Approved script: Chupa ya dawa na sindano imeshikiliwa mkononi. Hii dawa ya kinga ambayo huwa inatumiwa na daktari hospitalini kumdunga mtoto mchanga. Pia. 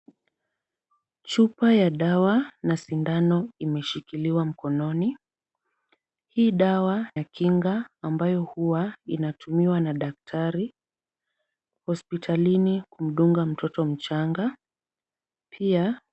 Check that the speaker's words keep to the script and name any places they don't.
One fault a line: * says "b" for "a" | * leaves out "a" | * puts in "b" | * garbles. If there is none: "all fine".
all fine